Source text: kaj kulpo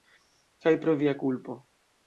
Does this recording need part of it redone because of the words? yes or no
yes